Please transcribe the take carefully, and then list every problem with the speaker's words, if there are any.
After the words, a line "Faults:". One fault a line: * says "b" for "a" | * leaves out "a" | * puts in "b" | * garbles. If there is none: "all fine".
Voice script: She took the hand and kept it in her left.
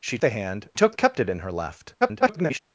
She the hand took kept it in her left. [garbled]
Faults:
* leaves out "took"
* says "took" for "and"
* garbles